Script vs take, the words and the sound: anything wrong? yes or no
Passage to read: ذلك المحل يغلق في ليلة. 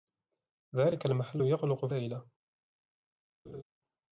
yes